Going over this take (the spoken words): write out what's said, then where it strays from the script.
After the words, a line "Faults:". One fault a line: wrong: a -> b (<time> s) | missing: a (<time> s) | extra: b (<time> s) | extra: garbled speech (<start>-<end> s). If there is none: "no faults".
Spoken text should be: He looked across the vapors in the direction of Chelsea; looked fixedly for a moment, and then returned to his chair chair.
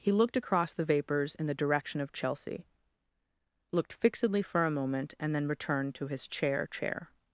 He looked across the vapors in the direction of Chelsea; looked fixedly for a moment, and then returned to his chair chair.
Faults:
no faults